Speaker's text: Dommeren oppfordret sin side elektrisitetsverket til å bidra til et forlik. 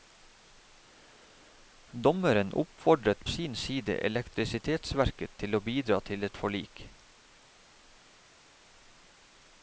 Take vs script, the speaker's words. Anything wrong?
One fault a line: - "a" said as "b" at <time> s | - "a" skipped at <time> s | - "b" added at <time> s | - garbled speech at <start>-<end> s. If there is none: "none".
none